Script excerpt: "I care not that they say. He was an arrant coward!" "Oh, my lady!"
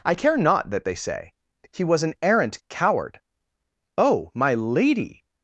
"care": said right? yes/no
yes